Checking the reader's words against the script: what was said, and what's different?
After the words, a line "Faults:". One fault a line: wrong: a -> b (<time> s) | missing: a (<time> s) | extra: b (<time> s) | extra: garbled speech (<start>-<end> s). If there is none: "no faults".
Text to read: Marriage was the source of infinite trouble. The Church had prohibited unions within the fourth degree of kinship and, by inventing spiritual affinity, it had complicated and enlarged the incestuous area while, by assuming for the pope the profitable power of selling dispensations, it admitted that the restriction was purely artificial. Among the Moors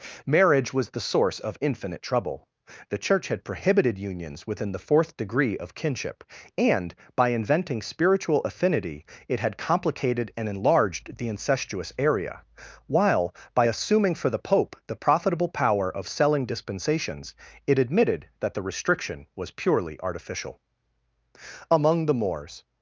Marriage was the source of infinite trouble. The Church had prohibited unions within the fourth degree of kinship and, by inventing spiritual affinity, it had complicated and enlarged the incestuous area while, by assuming for the pope the profitable power of selling dispensations, it admitted that the restriction was purely artificial. Among the Moors
Faults:
no faults